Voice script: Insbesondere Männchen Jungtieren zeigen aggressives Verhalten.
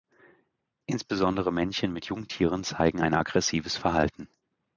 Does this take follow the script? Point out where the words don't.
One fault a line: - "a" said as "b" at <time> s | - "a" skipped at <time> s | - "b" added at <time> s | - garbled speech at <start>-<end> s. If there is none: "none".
- "mit" added at 1.9 s
- "ein" added at 3.0 s